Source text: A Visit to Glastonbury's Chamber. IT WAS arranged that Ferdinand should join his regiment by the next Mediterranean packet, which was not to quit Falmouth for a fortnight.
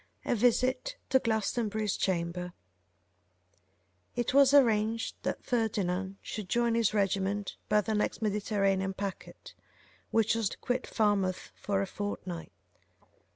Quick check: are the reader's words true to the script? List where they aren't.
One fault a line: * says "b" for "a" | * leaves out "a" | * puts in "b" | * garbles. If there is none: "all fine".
* leaves out "not"